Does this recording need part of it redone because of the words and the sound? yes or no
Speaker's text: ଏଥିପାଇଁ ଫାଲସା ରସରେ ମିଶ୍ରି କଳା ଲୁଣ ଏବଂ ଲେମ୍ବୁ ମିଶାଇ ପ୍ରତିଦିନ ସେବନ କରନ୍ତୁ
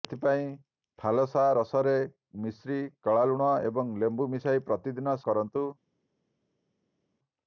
yes